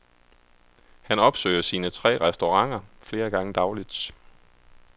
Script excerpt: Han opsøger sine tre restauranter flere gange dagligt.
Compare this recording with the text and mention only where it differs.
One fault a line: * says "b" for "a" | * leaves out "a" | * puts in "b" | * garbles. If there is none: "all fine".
all fine